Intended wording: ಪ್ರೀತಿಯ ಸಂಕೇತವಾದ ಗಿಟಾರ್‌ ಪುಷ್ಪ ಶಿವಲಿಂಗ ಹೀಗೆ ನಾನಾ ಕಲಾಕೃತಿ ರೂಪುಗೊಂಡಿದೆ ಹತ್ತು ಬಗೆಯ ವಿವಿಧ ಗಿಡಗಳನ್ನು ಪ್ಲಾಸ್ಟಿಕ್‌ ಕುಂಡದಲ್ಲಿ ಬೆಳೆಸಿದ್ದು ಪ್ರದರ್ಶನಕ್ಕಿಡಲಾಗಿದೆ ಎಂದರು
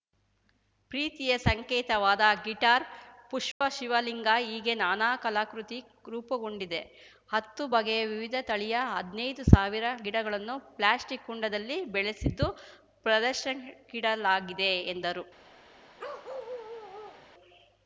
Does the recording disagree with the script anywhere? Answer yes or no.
yes